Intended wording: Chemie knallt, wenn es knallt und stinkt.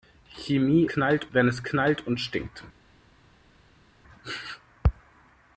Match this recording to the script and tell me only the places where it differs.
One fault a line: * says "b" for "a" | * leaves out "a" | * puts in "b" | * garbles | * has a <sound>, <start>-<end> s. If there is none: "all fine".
all fine